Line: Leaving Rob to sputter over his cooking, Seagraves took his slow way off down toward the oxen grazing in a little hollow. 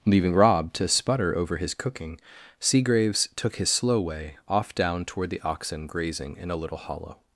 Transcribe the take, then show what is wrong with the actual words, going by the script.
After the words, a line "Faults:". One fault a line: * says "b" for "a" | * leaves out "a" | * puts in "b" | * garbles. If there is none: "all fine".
Leaving Rob to sputter over his cooking, Seagraves took his slow way off down toward the oxen grazing in a little hollow.
Faults:
all fine